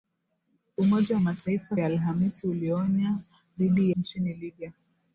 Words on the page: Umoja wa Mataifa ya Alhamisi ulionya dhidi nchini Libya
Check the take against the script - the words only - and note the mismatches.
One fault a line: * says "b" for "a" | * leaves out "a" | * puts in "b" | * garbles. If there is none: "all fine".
all fine